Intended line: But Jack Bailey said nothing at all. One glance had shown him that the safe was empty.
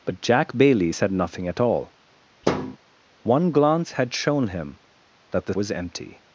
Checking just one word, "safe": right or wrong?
wrong